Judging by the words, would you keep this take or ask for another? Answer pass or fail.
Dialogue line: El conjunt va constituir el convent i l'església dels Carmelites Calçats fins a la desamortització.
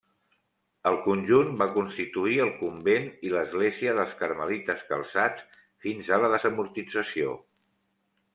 pass